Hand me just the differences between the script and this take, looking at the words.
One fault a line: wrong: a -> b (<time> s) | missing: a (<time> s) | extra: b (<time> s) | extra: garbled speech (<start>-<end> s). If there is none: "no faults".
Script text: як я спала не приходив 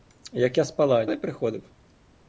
no faults